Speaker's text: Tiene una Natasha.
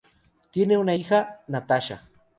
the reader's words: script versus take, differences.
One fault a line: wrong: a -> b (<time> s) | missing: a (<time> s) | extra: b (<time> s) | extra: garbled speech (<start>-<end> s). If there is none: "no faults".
extra: hija (0.9 s)